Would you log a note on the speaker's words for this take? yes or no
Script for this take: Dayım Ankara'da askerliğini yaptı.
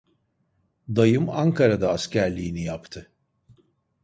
no